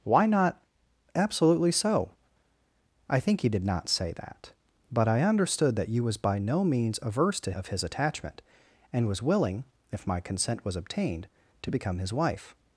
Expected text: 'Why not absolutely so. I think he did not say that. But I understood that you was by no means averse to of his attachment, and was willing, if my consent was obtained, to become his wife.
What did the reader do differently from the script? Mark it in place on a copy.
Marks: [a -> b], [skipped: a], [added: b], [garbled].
'Why not absolutely so. I think he did not say that. But I understood that you was by no means averse to of his attachment, and was willing, if my consent was obtained, to become his wife.